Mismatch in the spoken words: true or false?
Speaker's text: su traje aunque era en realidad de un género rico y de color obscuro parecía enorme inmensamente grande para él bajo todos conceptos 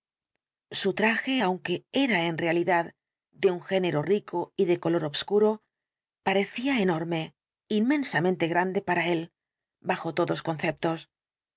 false